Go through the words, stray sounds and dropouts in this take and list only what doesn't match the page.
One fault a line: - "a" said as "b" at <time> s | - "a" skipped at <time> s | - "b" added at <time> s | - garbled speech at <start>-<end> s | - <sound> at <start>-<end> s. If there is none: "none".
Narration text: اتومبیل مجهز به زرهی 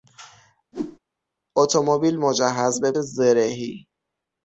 - whoosh at 0.7-1.0 s